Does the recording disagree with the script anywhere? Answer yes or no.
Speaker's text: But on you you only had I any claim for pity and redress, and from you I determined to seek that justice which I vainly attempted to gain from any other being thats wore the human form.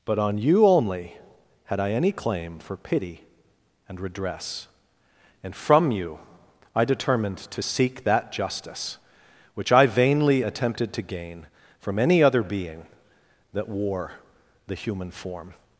yes